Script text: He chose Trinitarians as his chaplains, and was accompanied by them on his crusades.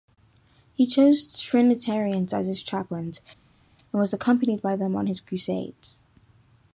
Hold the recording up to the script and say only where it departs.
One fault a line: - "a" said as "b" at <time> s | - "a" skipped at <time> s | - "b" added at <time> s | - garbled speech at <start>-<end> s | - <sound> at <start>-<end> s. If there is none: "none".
none